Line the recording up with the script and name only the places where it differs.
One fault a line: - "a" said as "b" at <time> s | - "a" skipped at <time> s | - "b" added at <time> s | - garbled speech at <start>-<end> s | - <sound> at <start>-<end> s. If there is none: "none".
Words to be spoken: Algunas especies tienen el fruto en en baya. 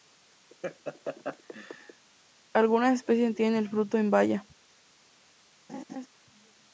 - laugh at 0.5-2.1 s
- "en" skipped at 4.1 s
- laugh at 5.7-6.1 s